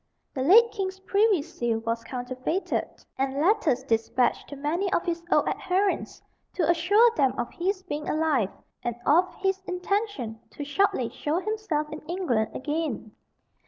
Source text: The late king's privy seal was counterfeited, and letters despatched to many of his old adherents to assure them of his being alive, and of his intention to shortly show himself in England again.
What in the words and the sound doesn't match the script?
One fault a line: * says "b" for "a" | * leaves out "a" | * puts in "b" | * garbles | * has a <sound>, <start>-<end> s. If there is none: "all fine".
all fine